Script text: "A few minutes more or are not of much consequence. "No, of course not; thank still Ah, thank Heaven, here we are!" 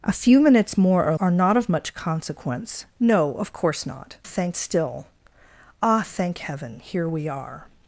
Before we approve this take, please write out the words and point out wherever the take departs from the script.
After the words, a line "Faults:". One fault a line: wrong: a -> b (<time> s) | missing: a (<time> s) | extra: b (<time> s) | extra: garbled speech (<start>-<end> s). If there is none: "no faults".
"A few minutes more or are not of much consequence. "No, of course not; thank still Ah, thank Heaven, here we are!"
Faults:
no faults